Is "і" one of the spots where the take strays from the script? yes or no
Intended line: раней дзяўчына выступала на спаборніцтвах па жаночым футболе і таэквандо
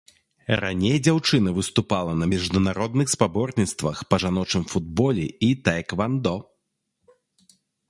no